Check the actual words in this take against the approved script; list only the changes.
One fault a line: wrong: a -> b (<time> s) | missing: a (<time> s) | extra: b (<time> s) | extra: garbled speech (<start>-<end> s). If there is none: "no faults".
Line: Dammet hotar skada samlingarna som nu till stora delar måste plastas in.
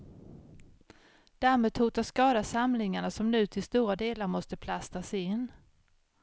no faults